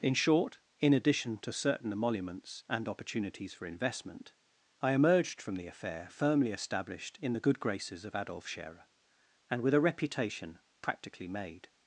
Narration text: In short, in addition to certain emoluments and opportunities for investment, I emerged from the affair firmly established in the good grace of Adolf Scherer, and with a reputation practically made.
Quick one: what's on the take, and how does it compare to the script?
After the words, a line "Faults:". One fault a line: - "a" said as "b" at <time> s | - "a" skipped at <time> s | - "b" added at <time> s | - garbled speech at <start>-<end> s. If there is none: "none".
In short, in addition to certain emoluments and opportunities for investment, I emerged from the affair firmly established in the good graces of Adolf Scherer, and with a reputation practically made.
Faults:
- "grace" said as "graces" at 7.6 s